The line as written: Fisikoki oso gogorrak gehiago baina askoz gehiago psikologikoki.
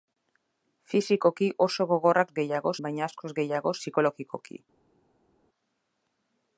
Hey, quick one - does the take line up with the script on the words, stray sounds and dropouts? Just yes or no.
yes